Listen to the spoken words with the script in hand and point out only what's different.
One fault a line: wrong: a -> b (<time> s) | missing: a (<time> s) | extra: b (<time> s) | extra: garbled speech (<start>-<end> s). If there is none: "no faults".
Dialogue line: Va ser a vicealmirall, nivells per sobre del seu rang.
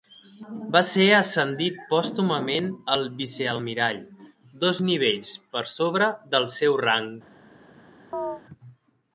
extra: ascendit pòstumament (1.2 s)
extra: dos (4.7 s)